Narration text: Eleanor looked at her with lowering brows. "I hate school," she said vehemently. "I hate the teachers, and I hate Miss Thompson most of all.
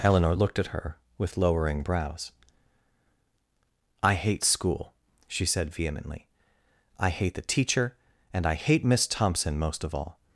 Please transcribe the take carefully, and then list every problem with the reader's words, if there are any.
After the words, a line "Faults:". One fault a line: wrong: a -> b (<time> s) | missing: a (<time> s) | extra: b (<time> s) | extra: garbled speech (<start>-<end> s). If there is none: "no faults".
Eleanor looked at her with lowering brows. "I hate school," she said vehemently. "I hate the teacher, and I hate Miss Thompson most of all.
Faults:
wrong: teachers -> teacher (7.4 s)